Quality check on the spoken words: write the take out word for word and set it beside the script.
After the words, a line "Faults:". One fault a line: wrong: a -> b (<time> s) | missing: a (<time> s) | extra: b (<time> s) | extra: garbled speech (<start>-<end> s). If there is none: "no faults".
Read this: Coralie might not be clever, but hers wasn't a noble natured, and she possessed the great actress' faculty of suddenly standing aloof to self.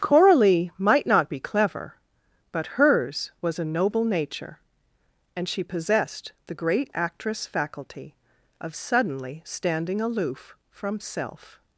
Coralie might not be clever, but hers was a noble nature, and she possessed the great actress' faculty of suddenly standing aloof from self.
Faults:
wrong: wasn't -> was (3.4 s)
wrong: natured -> nature (4.0 s)
wrong: to -> from (10.7 s)